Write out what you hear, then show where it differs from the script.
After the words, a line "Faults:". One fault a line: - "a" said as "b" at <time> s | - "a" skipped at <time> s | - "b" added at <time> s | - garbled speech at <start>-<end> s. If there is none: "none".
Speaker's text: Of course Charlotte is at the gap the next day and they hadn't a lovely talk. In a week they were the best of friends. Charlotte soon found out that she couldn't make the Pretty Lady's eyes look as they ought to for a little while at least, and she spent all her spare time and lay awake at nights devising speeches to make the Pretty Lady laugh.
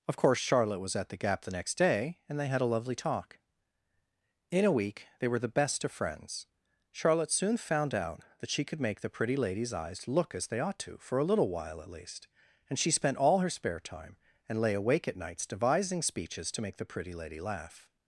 Of course Charlotte was at the gap the next day and they had a lovely talk. In a week they were the best of friends. Charlotte soon found out that she could make the Pretty Lady's eyes look as they ought to for a little while at least, and she spent all her spare time and lay awake at nights devising speeches to make the Pretty Lady laugh.
Faults:
- "is" said as "was" at 0.8 s
- "hadn't" said as "had" at 2.5 s
- "couldn't" said as "could" at 8.6 s